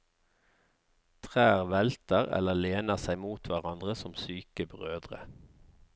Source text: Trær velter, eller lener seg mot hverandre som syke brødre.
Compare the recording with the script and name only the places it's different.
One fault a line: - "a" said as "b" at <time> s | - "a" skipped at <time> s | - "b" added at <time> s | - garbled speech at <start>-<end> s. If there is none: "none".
none